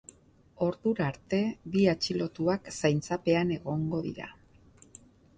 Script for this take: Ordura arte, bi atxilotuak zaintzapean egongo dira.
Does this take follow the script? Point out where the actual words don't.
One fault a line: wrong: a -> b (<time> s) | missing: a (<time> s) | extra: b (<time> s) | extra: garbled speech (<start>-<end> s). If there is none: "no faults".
no faults